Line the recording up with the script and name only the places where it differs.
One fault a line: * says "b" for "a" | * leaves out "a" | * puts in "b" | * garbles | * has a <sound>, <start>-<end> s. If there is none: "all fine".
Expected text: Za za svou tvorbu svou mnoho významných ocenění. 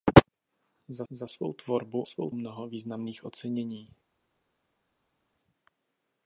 all fine